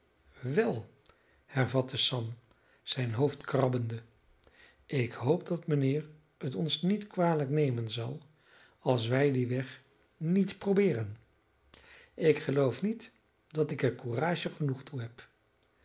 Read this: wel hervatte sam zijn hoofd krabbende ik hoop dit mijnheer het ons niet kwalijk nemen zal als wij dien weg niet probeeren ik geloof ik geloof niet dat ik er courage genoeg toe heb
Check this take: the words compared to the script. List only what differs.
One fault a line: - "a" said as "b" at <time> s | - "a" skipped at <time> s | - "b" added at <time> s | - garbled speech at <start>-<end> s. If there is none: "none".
- "dit" said as "dat" at 5.5 s
- "ik geloof" skipped at 12.8 s